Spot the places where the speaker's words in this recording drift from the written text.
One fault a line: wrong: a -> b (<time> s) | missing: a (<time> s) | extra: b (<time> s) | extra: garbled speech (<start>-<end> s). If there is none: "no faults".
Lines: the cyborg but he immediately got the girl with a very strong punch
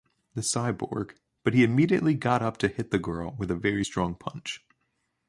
extra: up to hit (2.4 s)